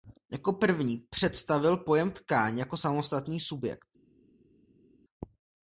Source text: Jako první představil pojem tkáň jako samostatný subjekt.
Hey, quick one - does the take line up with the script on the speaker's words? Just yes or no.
yes